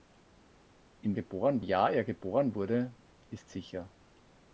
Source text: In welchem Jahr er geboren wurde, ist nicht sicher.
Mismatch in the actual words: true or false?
true